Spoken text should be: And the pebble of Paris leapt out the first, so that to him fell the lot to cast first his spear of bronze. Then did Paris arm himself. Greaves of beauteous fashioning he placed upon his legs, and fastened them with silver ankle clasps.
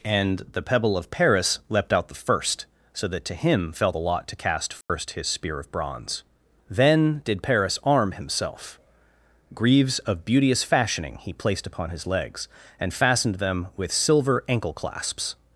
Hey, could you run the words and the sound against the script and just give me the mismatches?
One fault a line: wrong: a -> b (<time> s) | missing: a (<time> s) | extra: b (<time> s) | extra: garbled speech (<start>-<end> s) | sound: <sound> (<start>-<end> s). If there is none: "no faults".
sound: dropout (4.8-4.9 s)